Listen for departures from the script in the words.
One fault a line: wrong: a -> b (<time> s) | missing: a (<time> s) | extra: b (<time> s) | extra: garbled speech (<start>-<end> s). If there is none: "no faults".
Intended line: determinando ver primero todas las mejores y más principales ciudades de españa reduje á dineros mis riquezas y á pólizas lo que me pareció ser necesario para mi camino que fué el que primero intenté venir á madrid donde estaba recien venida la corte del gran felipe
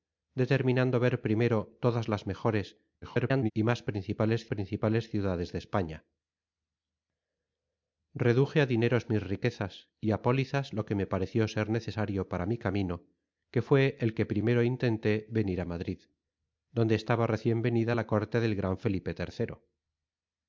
extra: garbled speech (3.0-3.5 s)
extra: principales (4.5 s)